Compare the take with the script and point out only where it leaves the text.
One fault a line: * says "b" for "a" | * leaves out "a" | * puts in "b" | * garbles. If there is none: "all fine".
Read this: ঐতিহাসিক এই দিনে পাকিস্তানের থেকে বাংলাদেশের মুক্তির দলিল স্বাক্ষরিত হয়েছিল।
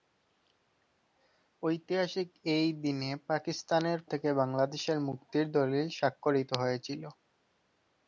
all fine